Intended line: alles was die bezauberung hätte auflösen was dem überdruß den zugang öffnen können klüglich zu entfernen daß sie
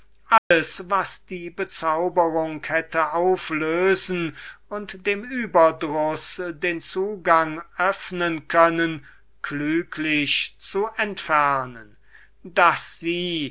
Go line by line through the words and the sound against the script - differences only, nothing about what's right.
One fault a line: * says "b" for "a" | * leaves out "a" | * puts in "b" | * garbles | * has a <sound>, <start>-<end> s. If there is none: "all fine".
* has a dropout, 0.4-0.5 s
* says "und" for "was"